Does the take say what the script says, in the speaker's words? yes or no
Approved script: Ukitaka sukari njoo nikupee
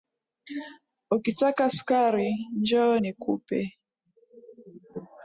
yes